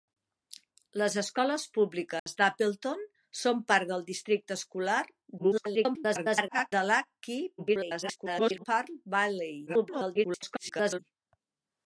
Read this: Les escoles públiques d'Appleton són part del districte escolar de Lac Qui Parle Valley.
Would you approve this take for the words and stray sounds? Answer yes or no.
no